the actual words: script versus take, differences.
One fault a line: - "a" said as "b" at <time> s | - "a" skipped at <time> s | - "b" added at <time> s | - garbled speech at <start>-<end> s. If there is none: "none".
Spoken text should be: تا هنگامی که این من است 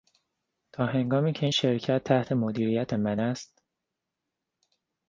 - "شرکت تحت مدیریت" added at 1.5 s